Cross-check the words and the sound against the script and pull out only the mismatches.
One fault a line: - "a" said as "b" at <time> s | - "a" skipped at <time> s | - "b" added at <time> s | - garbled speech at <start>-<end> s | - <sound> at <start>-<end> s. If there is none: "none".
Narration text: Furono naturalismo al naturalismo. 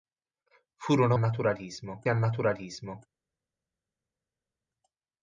none